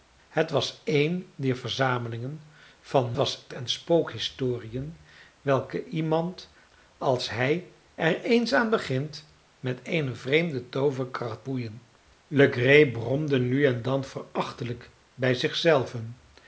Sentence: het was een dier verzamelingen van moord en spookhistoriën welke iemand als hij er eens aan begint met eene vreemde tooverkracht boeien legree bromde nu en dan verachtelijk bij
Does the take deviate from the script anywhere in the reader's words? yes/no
yes